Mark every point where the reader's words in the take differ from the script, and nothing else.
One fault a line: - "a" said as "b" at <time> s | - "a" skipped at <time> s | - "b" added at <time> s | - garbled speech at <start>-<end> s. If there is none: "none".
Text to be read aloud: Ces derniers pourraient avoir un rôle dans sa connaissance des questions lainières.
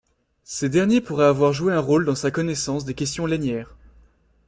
- "joué" added at 1.5 s